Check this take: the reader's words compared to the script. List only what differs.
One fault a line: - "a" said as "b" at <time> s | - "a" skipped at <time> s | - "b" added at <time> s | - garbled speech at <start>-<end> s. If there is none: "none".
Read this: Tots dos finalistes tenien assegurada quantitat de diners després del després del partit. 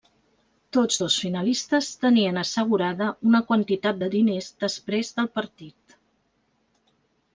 - "una" added at 3.3 s
- "després del" skipped at 5.3 s